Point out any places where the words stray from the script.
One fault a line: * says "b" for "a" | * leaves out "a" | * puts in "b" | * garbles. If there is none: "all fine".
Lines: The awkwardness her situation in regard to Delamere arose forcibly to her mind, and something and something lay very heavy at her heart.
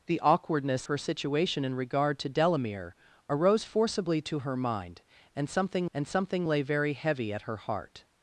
all fine